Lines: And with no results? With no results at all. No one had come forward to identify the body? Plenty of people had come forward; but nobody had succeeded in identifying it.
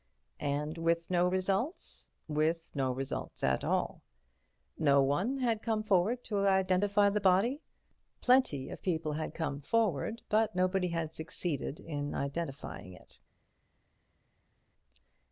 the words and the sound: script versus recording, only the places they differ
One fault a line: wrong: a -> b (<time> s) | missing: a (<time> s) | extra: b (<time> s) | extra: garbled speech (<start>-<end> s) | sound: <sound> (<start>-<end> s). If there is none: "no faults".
no faults